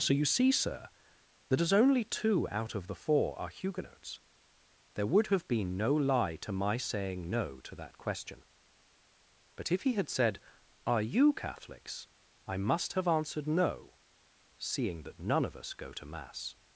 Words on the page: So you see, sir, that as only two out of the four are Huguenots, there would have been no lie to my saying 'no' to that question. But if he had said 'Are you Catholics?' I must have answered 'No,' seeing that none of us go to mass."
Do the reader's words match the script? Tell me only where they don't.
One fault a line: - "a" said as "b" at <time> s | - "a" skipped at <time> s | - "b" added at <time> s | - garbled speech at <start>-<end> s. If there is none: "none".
none